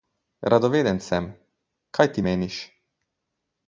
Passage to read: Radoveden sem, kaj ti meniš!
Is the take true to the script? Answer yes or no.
yes